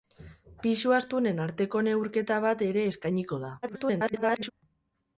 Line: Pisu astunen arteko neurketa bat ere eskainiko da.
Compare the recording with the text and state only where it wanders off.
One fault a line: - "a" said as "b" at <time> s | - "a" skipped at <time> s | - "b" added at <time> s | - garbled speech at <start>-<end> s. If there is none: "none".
- garbled speech at 3.6-4.5 s